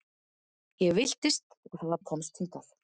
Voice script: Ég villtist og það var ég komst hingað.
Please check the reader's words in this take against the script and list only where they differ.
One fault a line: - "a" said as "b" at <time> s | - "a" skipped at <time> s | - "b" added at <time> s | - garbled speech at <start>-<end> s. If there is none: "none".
none